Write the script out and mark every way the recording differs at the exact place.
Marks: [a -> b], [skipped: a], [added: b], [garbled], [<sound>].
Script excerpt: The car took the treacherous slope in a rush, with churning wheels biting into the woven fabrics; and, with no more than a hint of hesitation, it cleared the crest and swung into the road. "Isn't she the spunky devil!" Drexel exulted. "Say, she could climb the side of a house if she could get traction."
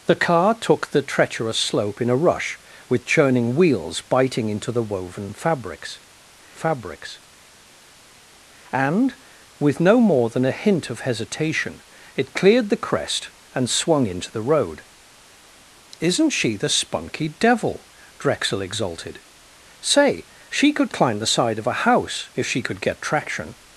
The car took the treacherous slope in a rush, with churning wheels biting into the woven fabrics; [added: fabrics] and, with no more than a hint of hesitation, it cleared the crest and swung into the road. "Isn't she the spunky devil!" Drexel exulted. "Say, she could climb the side of a house if she could get traction."